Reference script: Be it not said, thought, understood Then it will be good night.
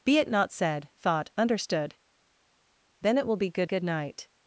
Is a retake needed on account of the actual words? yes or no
yes